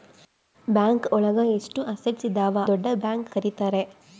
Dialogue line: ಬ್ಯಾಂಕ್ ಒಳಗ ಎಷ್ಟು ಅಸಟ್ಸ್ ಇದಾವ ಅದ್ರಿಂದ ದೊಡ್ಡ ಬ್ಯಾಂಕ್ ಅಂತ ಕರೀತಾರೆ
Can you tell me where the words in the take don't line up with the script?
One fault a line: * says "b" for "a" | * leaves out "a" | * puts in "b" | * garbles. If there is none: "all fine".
* leaves out "ಅದ್ರಿಂದ"
* leaves out "ಅಂತ"